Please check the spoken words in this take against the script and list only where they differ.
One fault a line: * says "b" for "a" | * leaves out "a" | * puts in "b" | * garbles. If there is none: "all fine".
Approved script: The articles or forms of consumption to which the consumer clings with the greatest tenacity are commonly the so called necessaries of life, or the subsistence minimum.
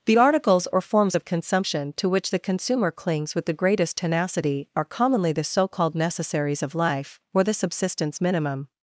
all fine